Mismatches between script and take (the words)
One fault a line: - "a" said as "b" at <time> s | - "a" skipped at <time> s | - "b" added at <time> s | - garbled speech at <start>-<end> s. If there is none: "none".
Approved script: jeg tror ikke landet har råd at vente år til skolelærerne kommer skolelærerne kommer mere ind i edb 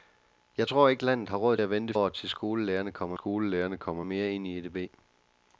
none